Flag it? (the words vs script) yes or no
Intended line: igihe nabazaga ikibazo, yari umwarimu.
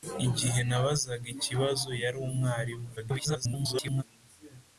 yes